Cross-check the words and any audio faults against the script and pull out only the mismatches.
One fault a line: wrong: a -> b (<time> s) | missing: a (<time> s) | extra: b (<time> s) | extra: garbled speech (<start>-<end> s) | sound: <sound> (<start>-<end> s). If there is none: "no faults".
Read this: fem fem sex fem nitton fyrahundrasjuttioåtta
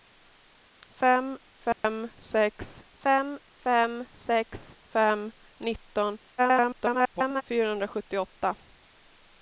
sound: dropout (1.7-1.8 s)
extra: fem sex fem (3.6 s)
extra: garbled speech (6.4-7.4 s)